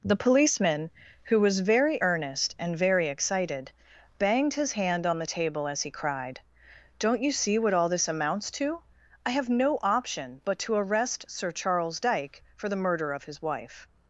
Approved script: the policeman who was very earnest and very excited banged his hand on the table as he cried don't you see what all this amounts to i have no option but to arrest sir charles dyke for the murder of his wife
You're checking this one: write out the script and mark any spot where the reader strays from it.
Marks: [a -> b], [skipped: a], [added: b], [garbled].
the policeman who was very earnest and very excited banged his hand on the table as he cried don't you see what all this amounts to i have no option but to arrest sir charles dyke for the murder of his wife